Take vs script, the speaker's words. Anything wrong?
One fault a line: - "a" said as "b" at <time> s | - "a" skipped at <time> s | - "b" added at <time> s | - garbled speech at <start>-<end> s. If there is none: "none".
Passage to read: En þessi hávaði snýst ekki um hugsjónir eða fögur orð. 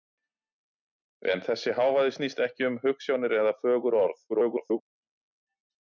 - garbled speech at 4.3-4.8 s